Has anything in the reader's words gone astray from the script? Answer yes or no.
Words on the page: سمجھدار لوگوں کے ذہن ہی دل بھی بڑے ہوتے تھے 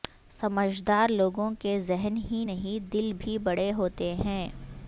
yes